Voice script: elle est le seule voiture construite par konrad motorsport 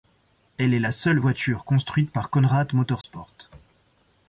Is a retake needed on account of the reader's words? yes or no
yes